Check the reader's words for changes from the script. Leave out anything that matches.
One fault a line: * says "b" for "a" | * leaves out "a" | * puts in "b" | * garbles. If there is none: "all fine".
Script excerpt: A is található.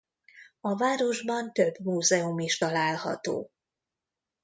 * puts in "városban több múzeum"